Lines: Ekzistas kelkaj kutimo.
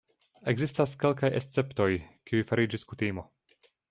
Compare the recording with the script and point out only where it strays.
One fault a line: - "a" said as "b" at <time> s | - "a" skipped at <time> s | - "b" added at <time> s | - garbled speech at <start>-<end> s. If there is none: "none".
- "esceptoj kiuj fariĝis" added at 1.4 s